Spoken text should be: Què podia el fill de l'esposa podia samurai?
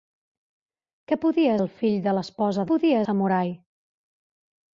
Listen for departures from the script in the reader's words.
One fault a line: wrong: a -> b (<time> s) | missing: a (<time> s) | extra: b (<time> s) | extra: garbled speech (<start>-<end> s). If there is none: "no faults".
no faults